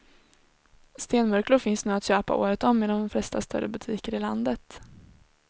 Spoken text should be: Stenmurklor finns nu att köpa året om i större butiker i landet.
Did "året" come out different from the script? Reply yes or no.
no